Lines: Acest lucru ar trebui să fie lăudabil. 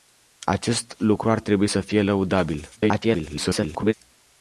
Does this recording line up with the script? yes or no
no